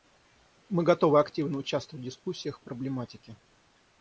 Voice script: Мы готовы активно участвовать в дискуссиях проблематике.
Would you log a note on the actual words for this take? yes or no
no